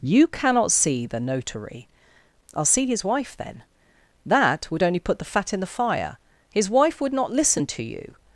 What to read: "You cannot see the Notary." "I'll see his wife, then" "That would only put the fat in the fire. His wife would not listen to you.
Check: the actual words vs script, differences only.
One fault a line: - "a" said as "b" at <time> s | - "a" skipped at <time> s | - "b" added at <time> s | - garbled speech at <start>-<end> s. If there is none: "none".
none